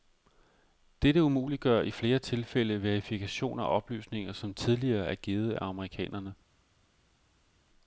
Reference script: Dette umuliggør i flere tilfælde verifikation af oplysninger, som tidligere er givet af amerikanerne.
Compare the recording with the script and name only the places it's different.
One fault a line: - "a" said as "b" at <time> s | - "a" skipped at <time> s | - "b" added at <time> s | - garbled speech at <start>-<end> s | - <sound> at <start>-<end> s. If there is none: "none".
none